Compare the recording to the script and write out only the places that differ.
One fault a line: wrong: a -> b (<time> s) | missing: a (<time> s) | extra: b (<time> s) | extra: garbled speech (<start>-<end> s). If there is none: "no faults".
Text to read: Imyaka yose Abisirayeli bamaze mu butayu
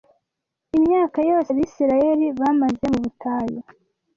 no faults